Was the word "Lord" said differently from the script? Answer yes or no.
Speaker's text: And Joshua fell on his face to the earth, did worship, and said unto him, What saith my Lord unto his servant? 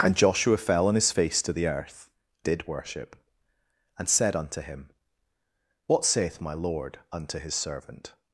no